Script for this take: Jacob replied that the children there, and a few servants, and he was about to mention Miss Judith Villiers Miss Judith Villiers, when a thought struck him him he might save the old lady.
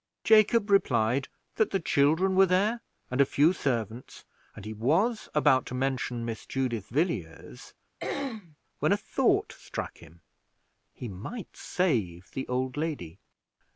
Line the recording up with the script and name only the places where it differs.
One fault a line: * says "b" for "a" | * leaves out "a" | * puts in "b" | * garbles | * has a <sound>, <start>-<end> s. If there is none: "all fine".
* puts in "were"
* leaves out "Miss Judith Villiers"
* has a throat clearing, 8.0-8.6 s
* leaves out "him"